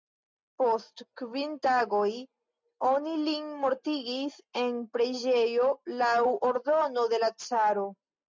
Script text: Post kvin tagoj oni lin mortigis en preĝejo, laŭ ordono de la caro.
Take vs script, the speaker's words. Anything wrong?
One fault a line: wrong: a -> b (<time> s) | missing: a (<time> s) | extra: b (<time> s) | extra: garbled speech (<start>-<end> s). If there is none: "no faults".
no faults